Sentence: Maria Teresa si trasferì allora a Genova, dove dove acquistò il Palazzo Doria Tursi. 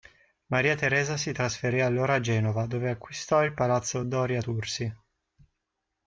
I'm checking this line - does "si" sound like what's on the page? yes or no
yes